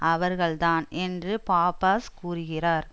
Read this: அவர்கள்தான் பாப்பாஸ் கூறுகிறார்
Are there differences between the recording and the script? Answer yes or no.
yes